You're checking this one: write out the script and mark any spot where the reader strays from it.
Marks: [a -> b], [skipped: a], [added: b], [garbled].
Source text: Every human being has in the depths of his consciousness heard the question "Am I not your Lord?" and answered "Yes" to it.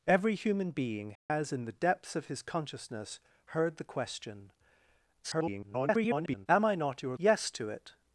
Every human being has in the depths of his consciousness heard the question [garbled] "Am I not your [skipped: Lord?" and answered] "Yes" to it.